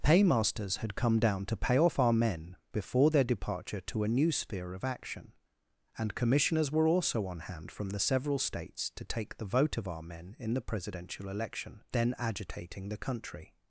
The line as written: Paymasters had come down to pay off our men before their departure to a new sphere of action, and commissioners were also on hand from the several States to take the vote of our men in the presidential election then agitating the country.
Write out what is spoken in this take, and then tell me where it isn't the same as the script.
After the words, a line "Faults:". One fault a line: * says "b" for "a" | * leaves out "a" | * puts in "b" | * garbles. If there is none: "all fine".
Paymasters had come down to pay off our men before their departure to a new sphere of action, and commissioners were also on hand from the several States to take the vote of our men in the presidential election then agitating the country.
Faults:
all fine